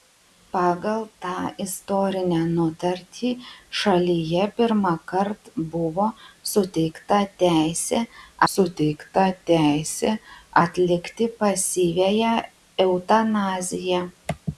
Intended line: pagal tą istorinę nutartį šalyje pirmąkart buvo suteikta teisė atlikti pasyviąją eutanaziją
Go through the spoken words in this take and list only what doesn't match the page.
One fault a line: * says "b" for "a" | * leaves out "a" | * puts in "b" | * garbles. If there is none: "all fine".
* puts in "suteikta teisė"